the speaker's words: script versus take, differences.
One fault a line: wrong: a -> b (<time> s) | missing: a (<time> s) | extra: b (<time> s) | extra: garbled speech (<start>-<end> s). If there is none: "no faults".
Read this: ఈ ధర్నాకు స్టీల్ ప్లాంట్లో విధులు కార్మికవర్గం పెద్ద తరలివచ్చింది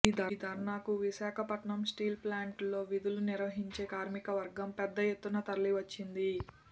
extra: విశాఖపట్నం (1.0 s)
extra: నిర్వహించే (3.3 s)
extra: ఎత్తున (5.1 s)